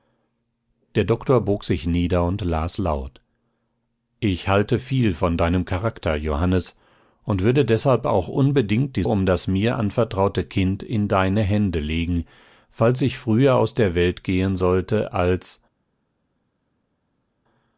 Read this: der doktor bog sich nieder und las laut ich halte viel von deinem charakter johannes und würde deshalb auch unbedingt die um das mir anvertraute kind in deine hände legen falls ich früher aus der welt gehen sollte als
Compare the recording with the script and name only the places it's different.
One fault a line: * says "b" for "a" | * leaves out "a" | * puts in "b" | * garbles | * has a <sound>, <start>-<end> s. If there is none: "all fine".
all fine